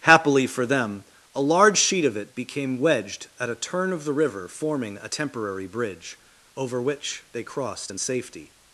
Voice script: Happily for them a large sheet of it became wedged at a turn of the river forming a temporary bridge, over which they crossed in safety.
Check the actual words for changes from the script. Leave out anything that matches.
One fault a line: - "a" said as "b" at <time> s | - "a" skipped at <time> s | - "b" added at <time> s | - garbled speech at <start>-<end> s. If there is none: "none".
none